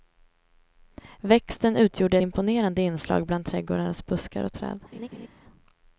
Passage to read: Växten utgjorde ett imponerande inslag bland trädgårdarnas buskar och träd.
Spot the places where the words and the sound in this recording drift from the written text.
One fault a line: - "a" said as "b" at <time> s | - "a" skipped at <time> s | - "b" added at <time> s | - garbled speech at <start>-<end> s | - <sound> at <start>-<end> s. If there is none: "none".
- "ett" skipped at 2.2 s
- laugh at 4.9-5.3 s